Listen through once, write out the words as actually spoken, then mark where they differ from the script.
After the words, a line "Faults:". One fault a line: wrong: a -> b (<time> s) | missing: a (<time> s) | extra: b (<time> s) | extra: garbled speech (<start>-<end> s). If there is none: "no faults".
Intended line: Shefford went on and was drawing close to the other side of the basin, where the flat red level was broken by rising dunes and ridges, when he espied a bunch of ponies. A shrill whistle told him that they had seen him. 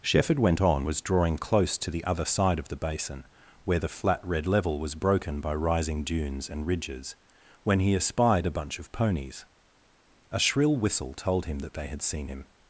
Shefford went on was drawing close to the other side of the basin, where the flat red level was broken by rising dunes and ridges, when he espied a bunch of ponies. A shrill whistle told him that they had seen him.
Faults:
missing: and (0.9 s)